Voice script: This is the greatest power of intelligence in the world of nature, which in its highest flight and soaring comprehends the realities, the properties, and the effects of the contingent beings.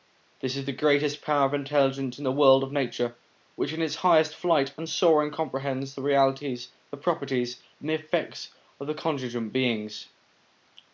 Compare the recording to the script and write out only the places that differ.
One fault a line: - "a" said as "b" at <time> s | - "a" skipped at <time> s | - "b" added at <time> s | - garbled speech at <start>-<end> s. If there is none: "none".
none